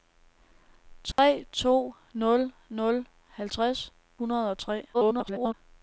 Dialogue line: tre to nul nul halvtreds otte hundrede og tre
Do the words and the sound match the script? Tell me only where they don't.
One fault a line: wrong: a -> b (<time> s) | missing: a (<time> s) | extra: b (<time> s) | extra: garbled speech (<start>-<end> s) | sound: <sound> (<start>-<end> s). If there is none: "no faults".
sound: dropout (1.1-1.2 s)
missing: otte (3.9 s)
extra: garbled speech (4.9-5.5 s)